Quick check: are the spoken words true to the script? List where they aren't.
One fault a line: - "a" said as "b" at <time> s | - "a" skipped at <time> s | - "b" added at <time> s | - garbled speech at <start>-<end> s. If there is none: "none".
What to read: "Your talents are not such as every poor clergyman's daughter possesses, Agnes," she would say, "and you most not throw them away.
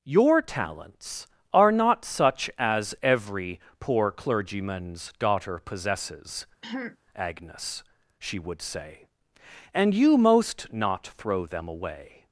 none